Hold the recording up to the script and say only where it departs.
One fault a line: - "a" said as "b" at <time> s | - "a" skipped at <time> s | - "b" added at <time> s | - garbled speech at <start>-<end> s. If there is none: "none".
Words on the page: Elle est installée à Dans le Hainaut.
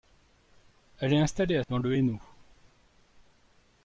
none